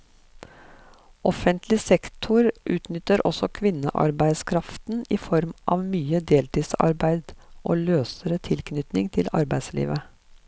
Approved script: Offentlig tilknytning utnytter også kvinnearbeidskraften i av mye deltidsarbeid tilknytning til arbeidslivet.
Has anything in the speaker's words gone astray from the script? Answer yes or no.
yes